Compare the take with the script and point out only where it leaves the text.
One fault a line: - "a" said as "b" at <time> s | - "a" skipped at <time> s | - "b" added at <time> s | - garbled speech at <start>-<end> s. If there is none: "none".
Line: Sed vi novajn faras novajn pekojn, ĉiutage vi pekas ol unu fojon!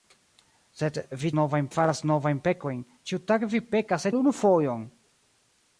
none